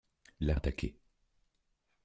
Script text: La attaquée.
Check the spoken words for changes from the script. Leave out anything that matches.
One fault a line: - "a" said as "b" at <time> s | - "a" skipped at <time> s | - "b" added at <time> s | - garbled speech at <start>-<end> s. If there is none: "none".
none